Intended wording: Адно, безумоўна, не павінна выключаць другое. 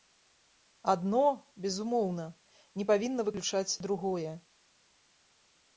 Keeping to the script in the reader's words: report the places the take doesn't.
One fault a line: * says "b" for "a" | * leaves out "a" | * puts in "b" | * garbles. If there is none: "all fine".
all fine